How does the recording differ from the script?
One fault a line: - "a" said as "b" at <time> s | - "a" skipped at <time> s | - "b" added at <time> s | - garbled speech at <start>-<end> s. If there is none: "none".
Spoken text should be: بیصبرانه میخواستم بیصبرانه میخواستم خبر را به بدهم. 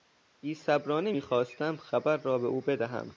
- "بیصبرانه میخواستم" skipped at 1.8 s
- "او" added at 2.4 s